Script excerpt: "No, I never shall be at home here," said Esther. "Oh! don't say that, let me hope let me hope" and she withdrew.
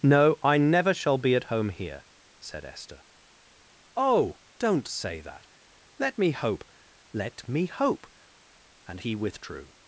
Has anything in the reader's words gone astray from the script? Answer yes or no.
yes